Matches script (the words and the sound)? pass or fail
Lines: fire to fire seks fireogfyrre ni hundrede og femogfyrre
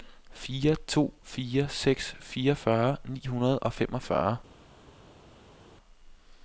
pass